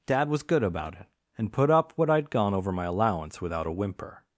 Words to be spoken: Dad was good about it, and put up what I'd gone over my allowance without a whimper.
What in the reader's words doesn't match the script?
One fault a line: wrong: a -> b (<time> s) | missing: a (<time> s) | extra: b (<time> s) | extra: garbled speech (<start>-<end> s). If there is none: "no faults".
no faults